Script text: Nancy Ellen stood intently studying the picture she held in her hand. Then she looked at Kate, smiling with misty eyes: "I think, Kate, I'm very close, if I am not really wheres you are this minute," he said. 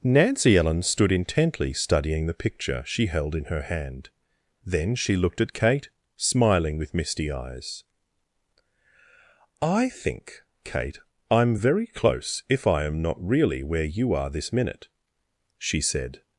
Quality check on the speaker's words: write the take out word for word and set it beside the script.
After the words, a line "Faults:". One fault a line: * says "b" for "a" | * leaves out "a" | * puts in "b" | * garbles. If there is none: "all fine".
Nancy Ellen stood intently studying the picture she held in her hand. Then she looked at Kate, smiling with misty eyes: "I think, Kate, I'm very close, if I am not really where you are this minute," she said.
Faults:
* says "where" for "wheres"
* says "she" for "he"